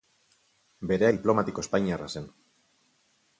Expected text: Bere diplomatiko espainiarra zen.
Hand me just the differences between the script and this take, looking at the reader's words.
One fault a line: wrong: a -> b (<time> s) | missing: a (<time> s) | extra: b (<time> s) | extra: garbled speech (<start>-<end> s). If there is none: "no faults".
no faults